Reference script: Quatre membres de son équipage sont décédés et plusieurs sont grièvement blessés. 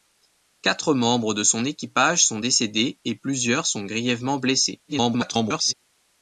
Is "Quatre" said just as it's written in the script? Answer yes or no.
yes